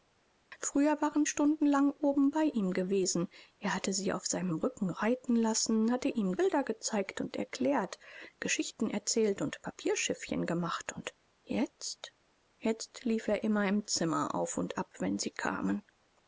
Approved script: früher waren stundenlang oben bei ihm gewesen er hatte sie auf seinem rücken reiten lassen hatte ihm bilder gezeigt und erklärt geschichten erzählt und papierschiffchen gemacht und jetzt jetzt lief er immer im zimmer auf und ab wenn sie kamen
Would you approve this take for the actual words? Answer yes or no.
yes